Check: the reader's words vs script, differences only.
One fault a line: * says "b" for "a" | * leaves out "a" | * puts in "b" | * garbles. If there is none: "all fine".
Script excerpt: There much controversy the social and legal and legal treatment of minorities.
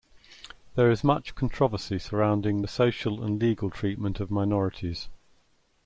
* puts in "is"
* puts in "surrounding"
* leaves out "and legal"